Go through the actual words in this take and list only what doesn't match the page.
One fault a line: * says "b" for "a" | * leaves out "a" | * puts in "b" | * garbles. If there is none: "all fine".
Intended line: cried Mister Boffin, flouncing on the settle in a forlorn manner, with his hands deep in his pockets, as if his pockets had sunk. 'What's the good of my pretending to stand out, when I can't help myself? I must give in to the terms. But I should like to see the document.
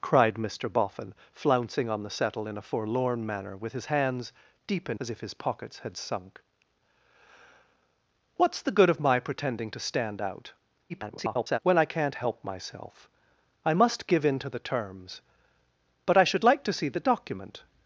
* leaves out "his pockets"
* garbles